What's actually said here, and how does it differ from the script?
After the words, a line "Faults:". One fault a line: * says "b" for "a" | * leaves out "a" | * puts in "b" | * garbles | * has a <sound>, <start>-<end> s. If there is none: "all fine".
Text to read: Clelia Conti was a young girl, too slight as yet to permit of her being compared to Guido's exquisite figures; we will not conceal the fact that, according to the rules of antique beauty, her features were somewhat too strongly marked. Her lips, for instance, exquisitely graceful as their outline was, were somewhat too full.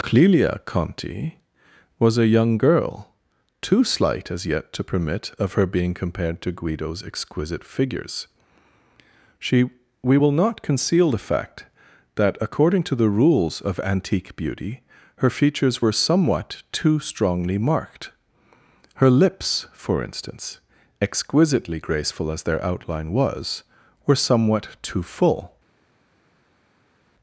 Clelia Conti was a young girl, too slight as yet to permit of her being compared to Guido's exquisite figures; she we will not conceal the fact that, according to the rules of antique beauty, her features were somewhat too strongly marked. Her lips, for instance, exquisitely graceful as their outline was, were somewhat too full.
Faults:
* puts in "she"